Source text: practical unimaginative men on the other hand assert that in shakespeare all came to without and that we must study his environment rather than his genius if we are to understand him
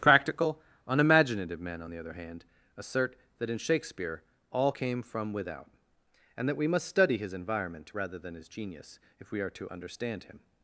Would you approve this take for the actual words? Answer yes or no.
no